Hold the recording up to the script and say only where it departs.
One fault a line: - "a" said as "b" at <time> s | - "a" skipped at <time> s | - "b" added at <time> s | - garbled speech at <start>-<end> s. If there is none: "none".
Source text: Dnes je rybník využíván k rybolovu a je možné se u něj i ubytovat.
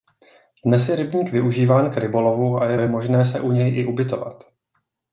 - "je" added at 2.7 s